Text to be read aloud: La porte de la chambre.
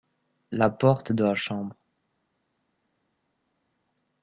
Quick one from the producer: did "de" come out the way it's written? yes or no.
yes